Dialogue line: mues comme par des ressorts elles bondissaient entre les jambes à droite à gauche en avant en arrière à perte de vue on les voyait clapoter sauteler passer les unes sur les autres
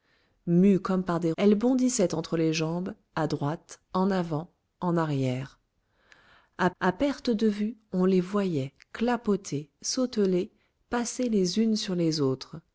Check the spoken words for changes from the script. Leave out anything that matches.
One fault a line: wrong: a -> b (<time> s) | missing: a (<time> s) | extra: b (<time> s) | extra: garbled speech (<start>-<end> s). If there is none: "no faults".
missing: ressorts (1.3 s)
missing: à gauche (3.8 s)
extra: à (6.8 s)